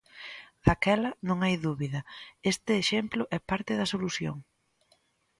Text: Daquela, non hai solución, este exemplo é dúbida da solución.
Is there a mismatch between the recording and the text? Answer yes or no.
yes